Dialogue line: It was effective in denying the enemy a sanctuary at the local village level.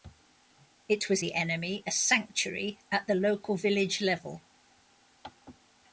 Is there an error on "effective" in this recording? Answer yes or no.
yes